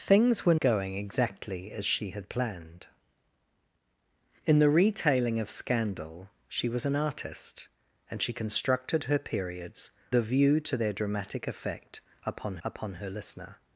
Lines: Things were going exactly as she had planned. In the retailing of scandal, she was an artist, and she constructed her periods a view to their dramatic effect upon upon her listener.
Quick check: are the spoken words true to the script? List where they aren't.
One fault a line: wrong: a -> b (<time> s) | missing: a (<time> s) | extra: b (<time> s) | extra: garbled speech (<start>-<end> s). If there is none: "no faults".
no faults